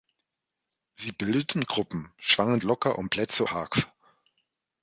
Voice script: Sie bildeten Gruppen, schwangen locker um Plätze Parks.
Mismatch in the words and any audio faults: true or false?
false